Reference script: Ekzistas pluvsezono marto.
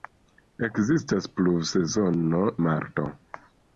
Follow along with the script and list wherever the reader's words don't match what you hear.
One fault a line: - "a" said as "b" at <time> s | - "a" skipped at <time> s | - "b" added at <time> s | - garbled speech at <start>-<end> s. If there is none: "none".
none